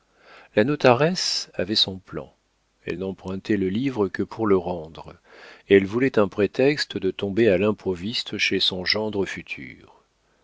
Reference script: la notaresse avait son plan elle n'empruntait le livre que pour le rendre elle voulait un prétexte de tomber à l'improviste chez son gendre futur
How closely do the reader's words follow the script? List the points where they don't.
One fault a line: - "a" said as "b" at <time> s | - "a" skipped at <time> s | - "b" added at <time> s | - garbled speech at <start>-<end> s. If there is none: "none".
none